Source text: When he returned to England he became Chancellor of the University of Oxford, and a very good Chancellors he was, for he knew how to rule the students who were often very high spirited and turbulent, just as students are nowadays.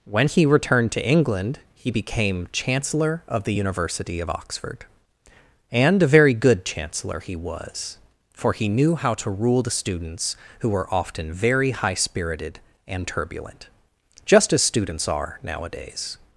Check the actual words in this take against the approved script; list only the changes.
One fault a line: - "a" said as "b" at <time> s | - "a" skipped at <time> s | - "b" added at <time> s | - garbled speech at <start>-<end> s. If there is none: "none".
- "Chancellors" said as "Chancellor" at 6.6 s